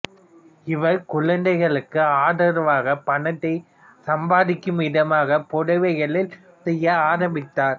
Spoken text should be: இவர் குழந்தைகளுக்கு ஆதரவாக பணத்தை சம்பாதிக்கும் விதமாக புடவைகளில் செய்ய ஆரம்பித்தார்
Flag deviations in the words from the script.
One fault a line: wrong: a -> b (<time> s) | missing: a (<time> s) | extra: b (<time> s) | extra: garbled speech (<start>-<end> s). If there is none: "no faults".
no faults